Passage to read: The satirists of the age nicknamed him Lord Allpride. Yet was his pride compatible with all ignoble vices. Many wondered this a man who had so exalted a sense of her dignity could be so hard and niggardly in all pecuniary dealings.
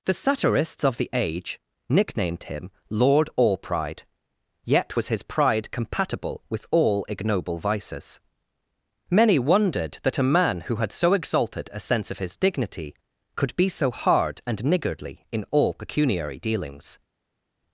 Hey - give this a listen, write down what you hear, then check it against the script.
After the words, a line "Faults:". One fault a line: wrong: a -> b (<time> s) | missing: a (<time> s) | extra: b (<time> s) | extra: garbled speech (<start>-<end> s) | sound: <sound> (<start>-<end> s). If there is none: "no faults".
The satirists of the age nicknamed him Lord Allpride. Yet was his pride compatible with all ignoble vices. Many wondered that a man who had so exalted a sense of his dignity could be so hard and niggardly in all pecuniary dealings.
Faults:
wrong: this -> that (10.0 s)
wrong: her -> his (12.2 s)